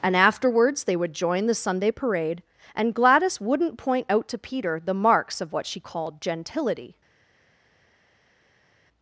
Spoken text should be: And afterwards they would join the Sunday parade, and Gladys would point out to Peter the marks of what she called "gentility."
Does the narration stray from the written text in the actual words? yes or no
yes